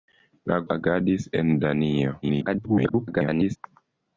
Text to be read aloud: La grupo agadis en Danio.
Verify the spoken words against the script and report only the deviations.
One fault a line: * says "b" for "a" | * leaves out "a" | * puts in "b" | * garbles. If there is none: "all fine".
* leaves out "grupo"
* garbles